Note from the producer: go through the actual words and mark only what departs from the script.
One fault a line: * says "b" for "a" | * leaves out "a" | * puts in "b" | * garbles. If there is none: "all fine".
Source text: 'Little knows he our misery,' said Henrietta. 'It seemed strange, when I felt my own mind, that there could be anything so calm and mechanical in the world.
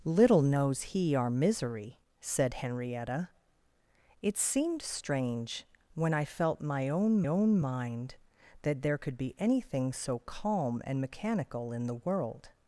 * puts in "own"